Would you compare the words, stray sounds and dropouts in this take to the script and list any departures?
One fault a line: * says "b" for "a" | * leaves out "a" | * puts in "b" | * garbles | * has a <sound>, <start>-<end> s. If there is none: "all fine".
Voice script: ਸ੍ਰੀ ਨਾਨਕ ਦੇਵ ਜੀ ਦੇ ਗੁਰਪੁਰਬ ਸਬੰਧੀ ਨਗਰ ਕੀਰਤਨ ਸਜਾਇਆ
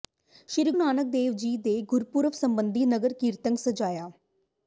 all fine